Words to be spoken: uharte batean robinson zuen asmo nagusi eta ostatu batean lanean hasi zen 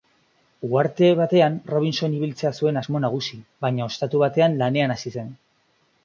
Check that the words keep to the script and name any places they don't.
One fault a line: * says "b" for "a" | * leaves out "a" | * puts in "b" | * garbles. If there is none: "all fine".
* puts in "ibiltzea"
* says "baina" for "eta"